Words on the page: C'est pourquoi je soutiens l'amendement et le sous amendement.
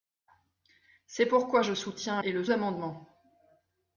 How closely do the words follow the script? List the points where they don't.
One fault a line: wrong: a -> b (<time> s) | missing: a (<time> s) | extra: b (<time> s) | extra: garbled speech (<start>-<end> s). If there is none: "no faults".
missing: l'amendement (2.2 s)
missing: sous (2.4 s)